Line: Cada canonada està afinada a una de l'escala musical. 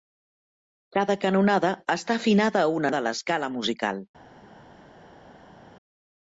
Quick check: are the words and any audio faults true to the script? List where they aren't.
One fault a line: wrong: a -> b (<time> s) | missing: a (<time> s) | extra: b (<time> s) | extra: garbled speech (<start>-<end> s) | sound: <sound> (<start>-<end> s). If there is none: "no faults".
no faults